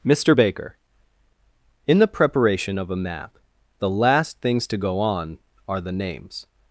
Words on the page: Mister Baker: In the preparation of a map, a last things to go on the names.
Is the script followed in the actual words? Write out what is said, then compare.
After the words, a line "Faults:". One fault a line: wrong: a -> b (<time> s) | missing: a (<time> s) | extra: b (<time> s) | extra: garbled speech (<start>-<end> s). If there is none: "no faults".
Mister Baker: In the preparation of a map, the last things to go on are the names.
Faults:
wrong: a -> the (3.8 s)
extra: are (5.7 s)